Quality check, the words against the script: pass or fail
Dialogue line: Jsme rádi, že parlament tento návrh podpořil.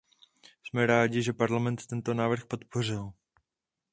pass